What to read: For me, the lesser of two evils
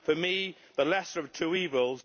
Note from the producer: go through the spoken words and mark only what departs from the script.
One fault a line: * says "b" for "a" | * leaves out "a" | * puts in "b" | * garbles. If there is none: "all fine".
all fine